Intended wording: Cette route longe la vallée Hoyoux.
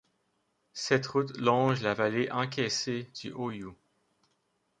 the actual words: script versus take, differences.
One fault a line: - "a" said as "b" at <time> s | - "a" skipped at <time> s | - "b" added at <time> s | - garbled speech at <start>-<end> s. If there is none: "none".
- "encaissée du" added at 2.3 s